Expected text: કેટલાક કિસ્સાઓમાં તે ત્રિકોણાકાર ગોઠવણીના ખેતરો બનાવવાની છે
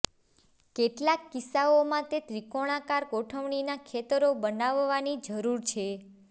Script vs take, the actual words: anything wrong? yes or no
yes